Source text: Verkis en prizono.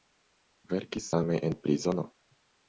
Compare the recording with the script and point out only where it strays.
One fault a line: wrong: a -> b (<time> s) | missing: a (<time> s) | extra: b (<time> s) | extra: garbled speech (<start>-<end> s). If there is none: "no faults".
extra: same (1.1 s)